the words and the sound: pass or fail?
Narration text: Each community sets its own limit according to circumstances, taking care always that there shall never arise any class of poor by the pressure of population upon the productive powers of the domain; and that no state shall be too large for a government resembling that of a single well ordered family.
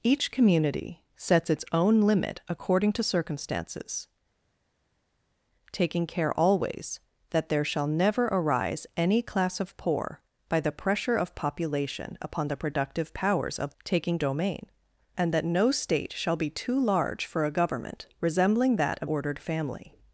fail